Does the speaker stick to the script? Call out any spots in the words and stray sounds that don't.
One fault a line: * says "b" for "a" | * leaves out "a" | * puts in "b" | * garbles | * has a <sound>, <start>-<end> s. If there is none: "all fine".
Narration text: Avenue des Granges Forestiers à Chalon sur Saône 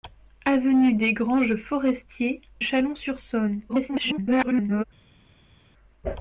* leaves out "à"
* garbles